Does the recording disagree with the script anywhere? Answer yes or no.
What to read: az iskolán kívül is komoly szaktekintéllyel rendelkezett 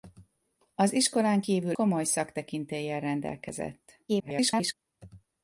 yes